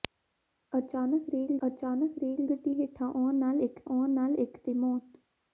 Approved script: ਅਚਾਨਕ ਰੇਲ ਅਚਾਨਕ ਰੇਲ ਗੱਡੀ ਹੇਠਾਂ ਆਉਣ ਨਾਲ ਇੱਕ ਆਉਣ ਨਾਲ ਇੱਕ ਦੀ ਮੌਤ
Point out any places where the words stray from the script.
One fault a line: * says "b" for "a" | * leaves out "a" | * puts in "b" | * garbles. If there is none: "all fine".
all fine